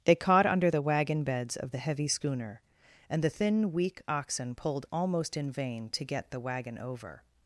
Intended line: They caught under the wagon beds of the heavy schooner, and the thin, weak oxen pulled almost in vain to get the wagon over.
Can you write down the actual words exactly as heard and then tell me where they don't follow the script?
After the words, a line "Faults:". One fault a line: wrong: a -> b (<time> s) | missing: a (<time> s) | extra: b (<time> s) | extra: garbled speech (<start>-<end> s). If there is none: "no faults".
They caught under the wagon beds of the heavy schooner, and the thin, weak oxen pulled almost in vain to get the wagon over.
Faults:
no faults